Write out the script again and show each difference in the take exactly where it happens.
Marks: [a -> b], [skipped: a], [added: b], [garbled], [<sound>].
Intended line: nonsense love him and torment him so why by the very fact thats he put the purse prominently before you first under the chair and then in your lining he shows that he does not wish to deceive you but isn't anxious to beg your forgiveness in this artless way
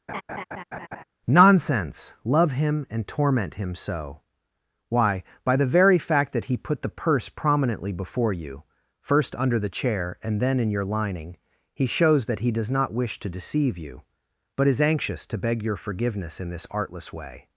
[laugh] nonsense love him and torment him so why by the very fact [thats -> that] he put the purse prominently before you first under the chair and then in your lining he shows that he does not wish to deceive you but [isn't -> is] anxious to beg your forgiveness in this artless way